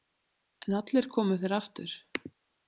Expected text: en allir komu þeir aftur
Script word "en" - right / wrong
right